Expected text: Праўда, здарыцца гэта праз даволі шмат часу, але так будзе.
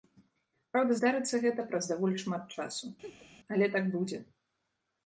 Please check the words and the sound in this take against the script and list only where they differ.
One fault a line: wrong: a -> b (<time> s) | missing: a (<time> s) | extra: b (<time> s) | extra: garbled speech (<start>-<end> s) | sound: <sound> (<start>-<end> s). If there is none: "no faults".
sound: laugh (3.0-3.3 s)